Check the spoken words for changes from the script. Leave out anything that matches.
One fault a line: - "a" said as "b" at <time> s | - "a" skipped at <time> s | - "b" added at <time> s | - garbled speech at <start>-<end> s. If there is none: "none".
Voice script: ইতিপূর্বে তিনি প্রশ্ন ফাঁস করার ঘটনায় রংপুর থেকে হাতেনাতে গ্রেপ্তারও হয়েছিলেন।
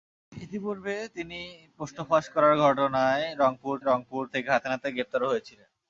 - "রংপুর" added at 3.9 s